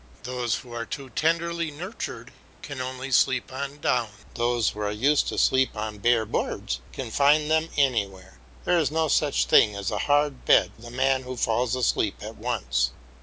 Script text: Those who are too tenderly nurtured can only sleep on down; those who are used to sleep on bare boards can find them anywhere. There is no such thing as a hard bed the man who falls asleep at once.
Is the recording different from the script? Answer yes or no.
no